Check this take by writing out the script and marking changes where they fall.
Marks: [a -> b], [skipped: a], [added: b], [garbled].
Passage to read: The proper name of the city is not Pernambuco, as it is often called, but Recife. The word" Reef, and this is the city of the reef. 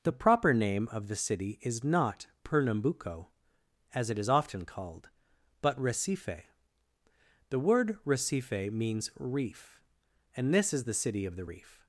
The proper name of the city is not Pernambuco, as it is often called, but Recife. The word" [added: Recife means] Reef, and this is the city of the reef.